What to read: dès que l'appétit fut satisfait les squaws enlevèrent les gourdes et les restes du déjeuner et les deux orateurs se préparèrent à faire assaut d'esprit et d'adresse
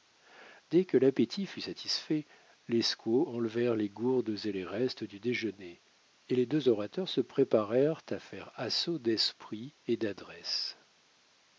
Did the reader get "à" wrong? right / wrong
right